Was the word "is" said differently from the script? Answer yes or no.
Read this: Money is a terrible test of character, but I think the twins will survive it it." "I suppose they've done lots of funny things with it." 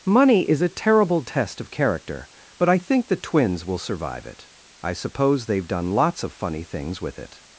no